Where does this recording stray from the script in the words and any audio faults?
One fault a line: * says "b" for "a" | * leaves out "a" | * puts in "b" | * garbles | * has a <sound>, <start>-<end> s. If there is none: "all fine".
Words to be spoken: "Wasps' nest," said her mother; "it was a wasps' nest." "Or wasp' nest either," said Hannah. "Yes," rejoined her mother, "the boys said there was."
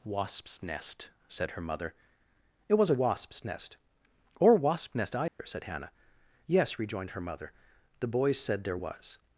* has a dropout, 5.3-5.4 s